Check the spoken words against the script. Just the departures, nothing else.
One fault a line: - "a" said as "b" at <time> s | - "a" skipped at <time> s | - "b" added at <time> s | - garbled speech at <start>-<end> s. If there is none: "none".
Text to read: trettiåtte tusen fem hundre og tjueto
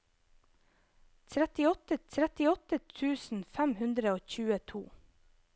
- "trettiåtte" added at 2.1 s